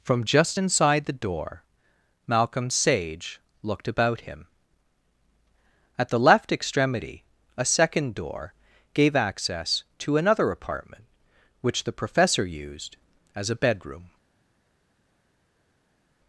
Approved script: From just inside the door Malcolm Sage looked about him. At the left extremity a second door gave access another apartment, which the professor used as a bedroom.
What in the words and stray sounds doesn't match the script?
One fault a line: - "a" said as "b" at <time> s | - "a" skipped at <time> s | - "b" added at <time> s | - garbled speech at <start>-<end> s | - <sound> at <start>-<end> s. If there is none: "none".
- "to" added at 10.0 s